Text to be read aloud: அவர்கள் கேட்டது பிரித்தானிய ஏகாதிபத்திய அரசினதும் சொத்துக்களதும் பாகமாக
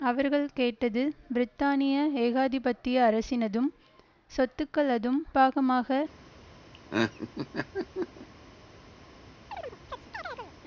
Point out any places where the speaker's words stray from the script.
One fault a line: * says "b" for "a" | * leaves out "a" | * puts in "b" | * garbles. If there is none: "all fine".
all fine